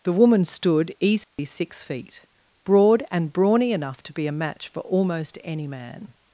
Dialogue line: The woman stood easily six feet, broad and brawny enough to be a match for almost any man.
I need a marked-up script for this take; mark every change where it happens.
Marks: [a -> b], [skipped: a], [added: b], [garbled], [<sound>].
The woman stood easily [dropout] six feet, broad and brawny enough to be a match for almost any man.